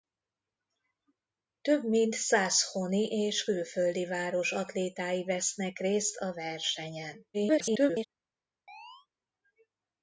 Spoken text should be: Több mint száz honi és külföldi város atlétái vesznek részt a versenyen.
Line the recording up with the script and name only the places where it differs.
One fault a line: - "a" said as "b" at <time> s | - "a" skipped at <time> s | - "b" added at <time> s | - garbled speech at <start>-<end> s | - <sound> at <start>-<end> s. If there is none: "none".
- garbled speech at 7.3-8.1 s
- chirp at 8.7-9.1 s